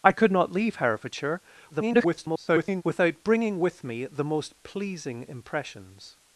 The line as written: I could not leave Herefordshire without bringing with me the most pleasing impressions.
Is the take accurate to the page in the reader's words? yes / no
no